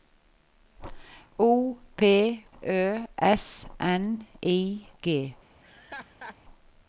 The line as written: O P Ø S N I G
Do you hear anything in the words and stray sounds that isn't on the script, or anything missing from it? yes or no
yes